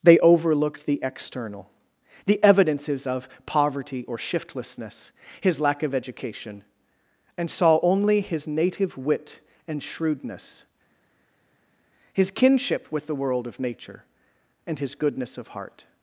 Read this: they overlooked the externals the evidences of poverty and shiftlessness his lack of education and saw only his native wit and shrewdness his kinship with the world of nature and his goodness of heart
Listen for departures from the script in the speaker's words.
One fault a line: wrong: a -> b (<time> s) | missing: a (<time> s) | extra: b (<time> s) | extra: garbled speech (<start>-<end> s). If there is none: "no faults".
wrong: externals -> external (1.0 s)
wrong: and -> or (4.1 s)